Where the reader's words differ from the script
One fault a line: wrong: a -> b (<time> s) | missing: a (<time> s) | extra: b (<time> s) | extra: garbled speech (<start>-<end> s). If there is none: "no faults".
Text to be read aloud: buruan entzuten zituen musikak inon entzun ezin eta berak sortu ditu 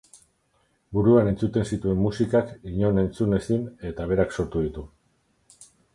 no faults